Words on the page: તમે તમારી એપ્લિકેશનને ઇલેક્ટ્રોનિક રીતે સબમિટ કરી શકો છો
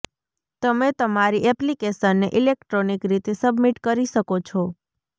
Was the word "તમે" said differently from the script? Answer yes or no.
no